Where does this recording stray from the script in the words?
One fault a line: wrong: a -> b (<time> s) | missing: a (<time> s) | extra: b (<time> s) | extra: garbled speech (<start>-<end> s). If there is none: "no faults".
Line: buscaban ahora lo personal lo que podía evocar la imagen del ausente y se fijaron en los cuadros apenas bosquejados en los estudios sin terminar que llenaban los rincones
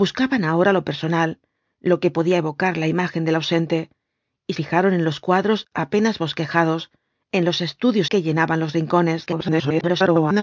missing: se (4.5 s)
missing: sin terminar (8.1 s)
extra: garbled speech (9.3-10.4 s)